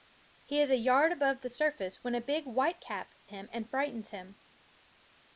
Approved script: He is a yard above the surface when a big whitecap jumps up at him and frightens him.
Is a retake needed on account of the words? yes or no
yes